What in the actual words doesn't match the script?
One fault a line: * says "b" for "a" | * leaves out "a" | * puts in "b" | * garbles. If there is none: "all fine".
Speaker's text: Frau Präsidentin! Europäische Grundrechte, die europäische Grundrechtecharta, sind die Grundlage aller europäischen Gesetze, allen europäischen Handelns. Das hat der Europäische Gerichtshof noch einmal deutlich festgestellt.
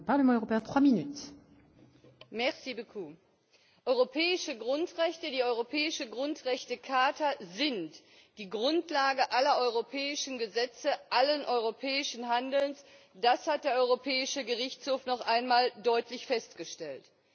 all fine